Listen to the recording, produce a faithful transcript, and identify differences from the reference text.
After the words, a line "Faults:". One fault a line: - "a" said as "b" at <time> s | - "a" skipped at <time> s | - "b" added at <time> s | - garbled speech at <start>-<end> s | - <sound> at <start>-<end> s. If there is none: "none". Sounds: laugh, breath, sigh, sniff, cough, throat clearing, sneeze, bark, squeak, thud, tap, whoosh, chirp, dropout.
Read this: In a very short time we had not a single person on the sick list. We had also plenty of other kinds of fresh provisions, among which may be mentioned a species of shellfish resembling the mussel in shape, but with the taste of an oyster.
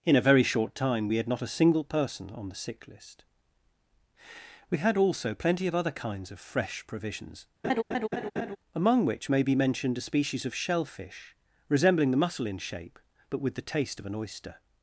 In a very short time we had not a single person on the sick list. We had also plenty of other kinds of fresh provisions, among which may be mentioned a species of shellfish resembling the mussel in shape, but with the taste of an oyster.
Faults:
- laugh at 7.6-8.6 s